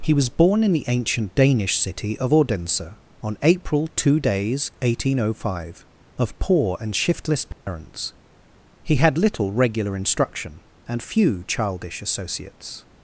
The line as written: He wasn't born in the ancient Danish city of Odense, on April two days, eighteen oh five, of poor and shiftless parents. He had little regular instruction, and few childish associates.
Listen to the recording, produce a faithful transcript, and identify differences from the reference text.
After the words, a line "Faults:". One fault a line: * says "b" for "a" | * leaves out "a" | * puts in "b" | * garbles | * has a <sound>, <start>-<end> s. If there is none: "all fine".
He was born in the ancient Danish city of Odense, on April two days, eighteen oh five, of poor and shiftless parents. He had little regular instruction, and few childish associates.
Faults:
* says "was" for "wasn't"
* has a dropout, 7.5-7.7 s